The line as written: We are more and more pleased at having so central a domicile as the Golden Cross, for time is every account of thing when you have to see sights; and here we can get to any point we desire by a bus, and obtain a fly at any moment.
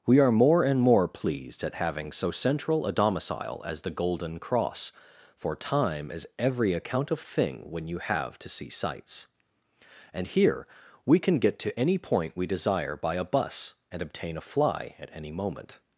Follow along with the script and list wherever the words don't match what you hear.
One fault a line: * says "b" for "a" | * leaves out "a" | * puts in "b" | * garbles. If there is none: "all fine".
all fine